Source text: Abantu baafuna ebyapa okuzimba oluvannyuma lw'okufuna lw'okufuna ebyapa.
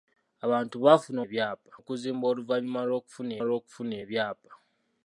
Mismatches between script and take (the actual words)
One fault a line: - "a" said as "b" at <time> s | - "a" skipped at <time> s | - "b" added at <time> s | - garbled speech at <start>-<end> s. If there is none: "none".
none